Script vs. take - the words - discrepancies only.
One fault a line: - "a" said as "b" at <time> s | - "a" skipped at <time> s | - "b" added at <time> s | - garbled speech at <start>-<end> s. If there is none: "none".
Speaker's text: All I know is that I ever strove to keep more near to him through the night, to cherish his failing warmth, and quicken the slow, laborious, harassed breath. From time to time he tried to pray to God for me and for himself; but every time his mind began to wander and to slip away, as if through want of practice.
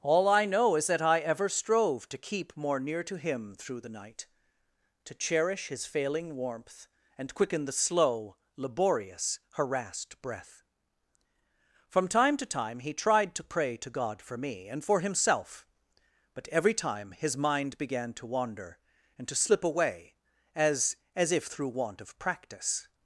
- "as" added at 21.1 s